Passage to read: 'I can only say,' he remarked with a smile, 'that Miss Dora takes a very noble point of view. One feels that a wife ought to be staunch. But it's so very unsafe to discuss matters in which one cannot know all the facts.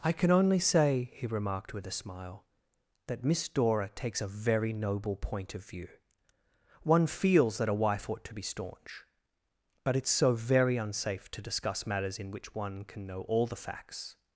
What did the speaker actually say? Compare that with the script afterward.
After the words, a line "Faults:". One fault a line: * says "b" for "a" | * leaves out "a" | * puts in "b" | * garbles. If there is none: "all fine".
'I can only say,' he remarked with a smile, 'that Miss Dora takes a very noble point of view. One feels that a wife ought to be staunch. But it's so very unsafe to discuss matters in which one can know all the facts.
Faults:
* says "can" for "cannot"